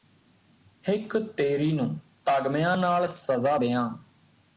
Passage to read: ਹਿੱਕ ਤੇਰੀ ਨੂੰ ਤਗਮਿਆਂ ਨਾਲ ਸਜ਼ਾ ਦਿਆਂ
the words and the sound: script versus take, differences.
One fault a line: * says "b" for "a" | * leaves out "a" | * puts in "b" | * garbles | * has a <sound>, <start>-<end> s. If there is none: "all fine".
all fine